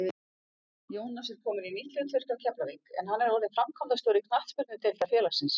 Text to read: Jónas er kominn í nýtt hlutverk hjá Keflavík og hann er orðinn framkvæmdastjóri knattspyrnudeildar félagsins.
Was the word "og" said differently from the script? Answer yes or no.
yes